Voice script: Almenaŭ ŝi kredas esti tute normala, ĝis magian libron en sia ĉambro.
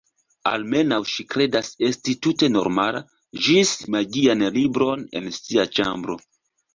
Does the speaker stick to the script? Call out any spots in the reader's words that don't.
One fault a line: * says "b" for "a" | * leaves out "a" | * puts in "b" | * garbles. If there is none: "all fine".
all fine